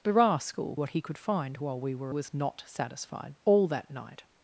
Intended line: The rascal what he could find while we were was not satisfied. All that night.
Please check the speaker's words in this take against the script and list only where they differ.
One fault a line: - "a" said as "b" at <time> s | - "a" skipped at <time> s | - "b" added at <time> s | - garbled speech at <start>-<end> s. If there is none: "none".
none